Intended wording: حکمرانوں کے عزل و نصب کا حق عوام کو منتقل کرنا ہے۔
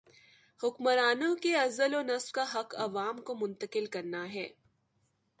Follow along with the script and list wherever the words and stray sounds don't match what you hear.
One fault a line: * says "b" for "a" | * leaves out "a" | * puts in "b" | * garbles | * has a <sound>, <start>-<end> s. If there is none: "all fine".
all fine